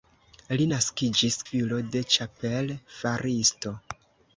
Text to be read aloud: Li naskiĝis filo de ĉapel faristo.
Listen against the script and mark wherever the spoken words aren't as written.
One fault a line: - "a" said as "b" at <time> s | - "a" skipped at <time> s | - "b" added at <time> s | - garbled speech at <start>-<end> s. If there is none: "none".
none